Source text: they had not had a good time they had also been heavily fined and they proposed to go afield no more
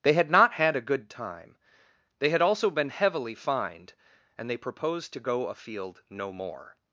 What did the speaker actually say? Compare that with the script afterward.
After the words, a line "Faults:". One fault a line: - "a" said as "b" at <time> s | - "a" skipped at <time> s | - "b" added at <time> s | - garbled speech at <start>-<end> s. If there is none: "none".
they had not had a good time they had also been heavily fined and they proposed to go afield no more
Faults:
none